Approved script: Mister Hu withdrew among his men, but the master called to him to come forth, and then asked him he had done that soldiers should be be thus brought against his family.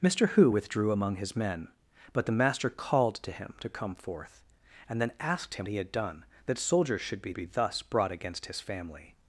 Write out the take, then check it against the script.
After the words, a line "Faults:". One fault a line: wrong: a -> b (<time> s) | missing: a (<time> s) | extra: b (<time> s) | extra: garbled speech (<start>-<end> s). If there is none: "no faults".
Mister Hu withdrew among his men, but the master called to him to come forth, and then asked him he had done that soldiers should be be thus brought against his family.
Faults:
no faults